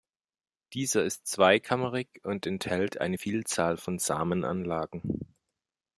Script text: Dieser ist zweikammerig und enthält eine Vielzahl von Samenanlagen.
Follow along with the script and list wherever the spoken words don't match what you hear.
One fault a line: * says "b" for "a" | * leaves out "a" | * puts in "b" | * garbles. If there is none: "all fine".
all fine